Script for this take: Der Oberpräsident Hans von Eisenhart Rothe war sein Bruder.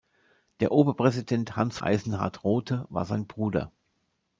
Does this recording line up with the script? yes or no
no